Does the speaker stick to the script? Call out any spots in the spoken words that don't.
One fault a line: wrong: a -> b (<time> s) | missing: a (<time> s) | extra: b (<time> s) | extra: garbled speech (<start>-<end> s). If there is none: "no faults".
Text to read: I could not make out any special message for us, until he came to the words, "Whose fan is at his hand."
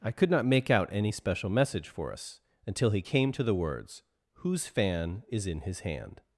wrong: at -> in (5.5 s)